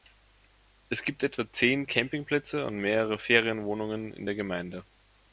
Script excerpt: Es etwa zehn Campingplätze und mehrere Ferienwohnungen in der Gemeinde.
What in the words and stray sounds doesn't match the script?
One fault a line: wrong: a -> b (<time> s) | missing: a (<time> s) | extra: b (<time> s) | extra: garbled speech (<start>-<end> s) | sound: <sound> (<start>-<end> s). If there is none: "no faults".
extra: gibt (1.0 s)